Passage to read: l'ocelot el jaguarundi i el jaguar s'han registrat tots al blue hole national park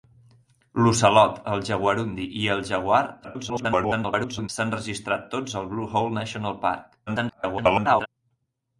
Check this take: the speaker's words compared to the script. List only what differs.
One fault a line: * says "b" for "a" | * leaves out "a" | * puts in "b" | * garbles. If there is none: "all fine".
* garbles
* garbles